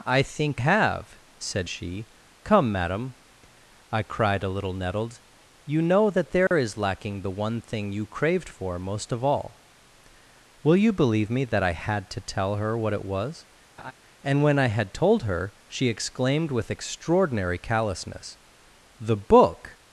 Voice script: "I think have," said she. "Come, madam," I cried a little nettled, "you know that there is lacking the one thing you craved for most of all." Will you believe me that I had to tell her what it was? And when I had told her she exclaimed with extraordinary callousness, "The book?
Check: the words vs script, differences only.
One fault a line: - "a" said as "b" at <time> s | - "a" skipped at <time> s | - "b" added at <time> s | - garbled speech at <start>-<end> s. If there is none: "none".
none